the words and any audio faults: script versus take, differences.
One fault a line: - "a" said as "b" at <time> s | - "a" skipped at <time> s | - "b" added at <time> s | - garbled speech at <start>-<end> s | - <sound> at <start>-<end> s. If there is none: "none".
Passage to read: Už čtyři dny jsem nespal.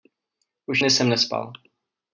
- "čtyři" skipped at 0.8 s